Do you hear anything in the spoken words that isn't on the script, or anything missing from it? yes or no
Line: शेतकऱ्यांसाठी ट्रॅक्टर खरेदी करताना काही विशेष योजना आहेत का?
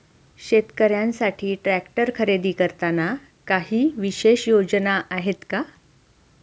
no